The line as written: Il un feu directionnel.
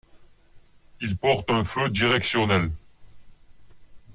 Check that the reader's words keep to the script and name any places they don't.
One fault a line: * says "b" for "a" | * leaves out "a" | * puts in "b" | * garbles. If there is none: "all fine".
* puts in "porte"